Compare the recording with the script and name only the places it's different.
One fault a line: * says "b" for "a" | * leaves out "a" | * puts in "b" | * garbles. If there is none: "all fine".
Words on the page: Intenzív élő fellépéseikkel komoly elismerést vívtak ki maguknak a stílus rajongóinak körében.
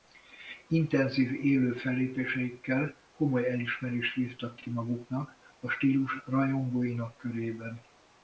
* puts in "ki"